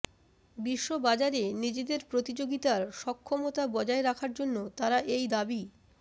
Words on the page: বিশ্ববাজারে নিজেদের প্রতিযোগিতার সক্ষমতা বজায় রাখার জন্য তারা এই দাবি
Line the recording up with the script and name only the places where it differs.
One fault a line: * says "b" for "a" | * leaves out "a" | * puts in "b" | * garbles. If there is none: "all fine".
all fine